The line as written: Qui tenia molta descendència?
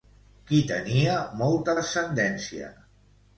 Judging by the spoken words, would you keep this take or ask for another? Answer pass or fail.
pass